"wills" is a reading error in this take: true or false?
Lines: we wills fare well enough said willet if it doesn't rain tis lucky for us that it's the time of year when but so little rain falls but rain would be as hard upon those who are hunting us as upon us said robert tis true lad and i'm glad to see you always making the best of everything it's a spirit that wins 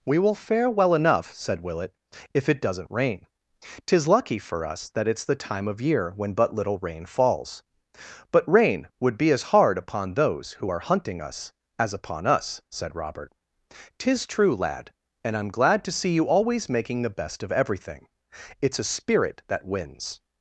true